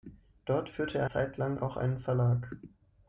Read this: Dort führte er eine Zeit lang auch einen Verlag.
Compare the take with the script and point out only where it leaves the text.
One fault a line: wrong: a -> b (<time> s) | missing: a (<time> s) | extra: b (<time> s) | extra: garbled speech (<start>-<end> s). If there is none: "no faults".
missing: eine (1.1 s)